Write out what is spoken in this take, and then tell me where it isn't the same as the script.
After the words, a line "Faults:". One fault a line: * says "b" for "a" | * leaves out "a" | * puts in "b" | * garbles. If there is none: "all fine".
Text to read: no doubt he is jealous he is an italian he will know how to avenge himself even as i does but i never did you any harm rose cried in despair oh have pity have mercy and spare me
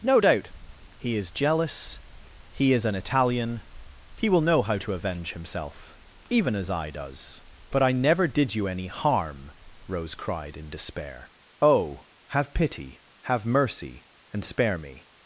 no doubt he is jealous he is an italian he will know how to avenge himself even as i does but i never did you any harm rose cried in despair oh have pity have mercy and spare me
Faults:
all fine